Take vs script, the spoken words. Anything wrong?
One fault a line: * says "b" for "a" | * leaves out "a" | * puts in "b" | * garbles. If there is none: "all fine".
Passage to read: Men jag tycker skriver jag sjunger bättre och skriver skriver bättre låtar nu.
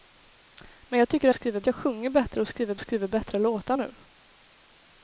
all fine